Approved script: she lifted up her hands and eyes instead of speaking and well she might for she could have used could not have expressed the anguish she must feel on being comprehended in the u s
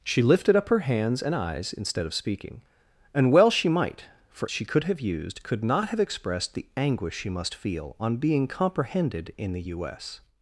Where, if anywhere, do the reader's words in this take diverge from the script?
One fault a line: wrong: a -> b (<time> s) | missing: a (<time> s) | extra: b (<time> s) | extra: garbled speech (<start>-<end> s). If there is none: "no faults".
no faults